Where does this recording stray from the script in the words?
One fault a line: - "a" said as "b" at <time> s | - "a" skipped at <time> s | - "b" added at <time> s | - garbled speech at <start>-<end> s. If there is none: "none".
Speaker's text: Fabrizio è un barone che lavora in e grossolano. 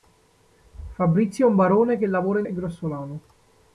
none